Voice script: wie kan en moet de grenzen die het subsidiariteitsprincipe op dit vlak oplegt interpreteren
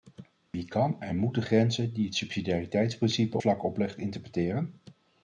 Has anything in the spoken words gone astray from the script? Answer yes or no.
yes